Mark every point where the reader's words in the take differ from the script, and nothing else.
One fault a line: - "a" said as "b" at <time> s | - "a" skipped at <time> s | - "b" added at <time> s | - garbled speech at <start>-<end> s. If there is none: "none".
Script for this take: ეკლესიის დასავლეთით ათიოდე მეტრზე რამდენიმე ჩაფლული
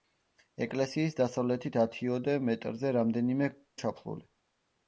none